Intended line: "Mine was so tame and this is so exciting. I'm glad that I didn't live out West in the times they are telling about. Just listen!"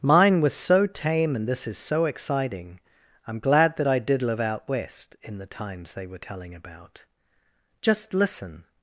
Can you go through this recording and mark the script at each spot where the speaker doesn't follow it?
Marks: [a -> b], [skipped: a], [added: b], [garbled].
"Mine was so tame and this is so exciting. I'm glad that I [didn't -> did] live out West in the times they [are -> were] telling about. Just listen!"